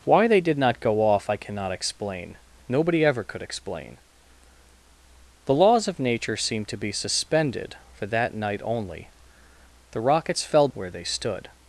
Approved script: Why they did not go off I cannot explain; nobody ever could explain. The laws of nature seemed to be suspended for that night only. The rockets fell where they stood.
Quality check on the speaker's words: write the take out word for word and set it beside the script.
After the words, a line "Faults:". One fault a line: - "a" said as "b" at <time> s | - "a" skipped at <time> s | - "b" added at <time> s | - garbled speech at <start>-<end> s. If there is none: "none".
Why they did not go off I cannot explain; nobody ever could explain. The laws of nature seemed to be suspended for that night only. The rockets fell where they stood.
Faults:
none